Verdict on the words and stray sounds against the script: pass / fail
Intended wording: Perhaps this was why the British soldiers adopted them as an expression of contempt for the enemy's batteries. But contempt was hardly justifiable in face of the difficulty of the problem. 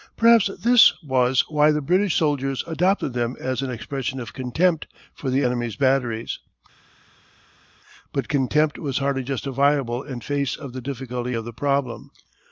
pass